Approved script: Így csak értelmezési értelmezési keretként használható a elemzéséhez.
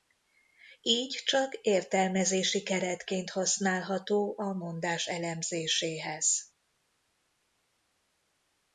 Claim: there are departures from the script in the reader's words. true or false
true